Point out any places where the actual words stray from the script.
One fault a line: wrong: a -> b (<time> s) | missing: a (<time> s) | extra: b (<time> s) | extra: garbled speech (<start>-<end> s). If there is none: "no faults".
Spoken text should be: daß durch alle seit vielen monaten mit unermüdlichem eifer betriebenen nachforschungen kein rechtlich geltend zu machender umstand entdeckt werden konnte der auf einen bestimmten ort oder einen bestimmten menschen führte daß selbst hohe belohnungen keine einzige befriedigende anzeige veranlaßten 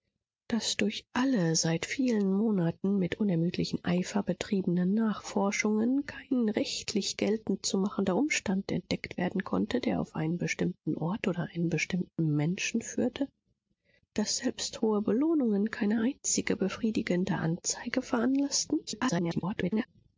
extra: garbled speech (18.9-19.9 s)